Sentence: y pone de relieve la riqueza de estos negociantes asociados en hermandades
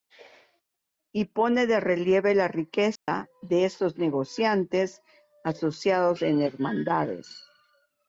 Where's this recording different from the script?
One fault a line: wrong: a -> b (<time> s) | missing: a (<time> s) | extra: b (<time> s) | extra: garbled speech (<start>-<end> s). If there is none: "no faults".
no faults